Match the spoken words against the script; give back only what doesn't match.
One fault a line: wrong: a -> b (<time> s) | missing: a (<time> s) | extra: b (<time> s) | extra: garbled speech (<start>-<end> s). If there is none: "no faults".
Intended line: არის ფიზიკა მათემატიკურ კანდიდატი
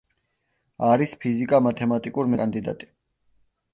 no faults